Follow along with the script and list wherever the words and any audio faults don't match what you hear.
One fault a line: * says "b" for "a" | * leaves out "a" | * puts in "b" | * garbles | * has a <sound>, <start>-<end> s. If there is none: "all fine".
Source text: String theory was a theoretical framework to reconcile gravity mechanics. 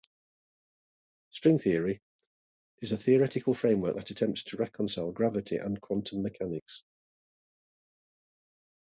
* says "is" for "was"
* puts in "that attempts"
* puts in "and quantum"